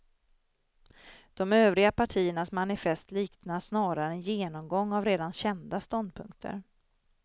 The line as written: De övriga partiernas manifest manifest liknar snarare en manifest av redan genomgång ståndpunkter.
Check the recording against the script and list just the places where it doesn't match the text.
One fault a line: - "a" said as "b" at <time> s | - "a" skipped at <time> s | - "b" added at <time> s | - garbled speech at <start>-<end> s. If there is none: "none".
- "manifest" skipped at 3.1 s
- "manifest" said as "genomgång" at 4.2 s
- "genomgång" said as "kända" at 5.3 s